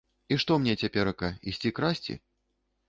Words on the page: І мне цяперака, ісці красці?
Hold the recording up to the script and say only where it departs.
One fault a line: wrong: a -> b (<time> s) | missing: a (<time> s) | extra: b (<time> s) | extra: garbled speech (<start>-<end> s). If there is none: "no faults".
extra: што (0.4 s)